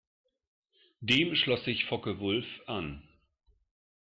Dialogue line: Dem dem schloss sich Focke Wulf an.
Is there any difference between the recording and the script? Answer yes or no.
yes